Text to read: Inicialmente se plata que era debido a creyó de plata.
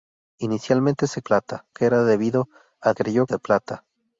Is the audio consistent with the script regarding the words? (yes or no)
yes